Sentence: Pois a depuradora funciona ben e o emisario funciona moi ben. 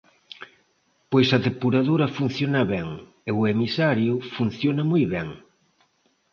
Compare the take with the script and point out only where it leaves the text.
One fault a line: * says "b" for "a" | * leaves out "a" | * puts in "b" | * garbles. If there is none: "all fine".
all fine